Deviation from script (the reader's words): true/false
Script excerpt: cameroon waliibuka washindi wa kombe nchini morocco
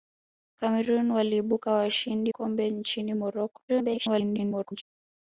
true